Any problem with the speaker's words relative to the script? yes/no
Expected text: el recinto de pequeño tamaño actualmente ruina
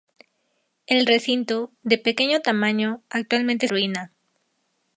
no